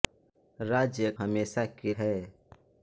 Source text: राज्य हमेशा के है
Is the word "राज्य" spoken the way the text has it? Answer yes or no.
yes